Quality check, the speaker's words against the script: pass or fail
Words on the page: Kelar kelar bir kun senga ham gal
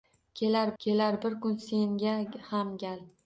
pass